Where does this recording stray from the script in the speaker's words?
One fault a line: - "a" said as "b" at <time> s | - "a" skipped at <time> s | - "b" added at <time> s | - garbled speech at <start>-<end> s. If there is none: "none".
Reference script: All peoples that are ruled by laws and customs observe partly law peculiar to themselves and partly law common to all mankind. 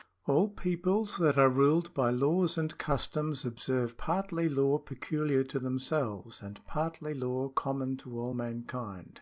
none